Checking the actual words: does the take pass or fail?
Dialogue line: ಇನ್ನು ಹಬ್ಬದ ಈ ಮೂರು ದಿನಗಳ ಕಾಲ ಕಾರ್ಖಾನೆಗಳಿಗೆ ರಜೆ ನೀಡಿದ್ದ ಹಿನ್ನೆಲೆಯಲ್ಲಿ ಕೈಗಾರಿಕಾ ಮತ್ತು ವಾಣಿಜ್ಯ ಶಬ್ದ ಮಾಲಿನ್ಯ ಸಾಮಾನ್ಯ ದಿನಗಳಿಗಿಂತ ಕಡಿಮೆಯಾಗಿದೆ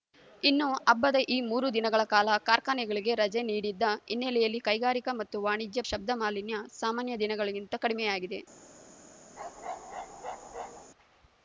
pass